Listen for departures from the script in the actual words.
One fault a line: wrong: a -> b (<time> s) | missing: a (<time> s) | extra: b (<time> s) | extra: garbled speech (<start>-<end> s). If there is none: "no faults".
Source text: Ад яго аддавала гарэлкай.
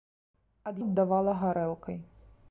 missing: яго (0.8 s)